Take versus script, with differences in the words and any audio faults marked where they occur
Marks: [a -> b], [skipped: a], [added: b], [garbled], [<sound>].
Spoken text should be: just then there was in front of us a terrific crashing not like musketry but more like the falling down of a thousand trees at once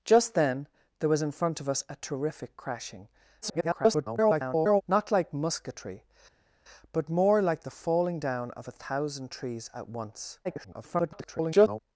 just then there was in front of us a terrific crashing [garbled] not like musketry but more like the falling down of a thousand trees at once [garbled]